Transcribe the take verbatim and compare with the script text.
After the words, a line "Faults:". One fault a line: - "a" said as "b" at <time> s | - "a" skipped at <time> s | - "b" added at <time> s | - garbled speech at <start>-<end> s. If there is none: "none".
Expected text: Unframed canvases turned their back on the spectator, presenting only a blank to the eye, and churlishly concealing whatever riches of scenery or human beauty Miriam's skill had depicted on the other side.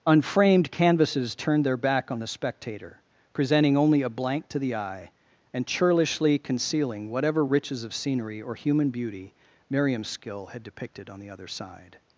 Unframed canvases turned their back on the spectator, presenting only a blank to the eye, and churlishly concealing whatever riches of scenery or human beauty Miriam's skill had depicted on the other side.
Faults:
none